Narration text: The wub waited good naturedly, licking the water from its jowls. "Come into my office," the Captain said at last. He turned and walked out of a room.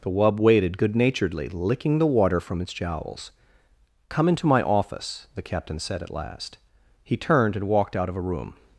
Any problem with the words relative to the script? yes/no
no